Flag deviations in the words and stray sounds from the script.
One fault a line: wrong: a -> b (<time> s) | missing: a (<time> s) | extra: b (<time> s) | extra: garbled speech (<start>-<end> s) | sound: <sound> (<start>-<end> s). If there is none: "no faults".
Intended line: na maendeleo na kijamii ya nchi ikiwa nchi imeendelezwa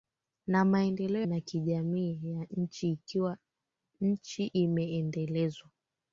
no faults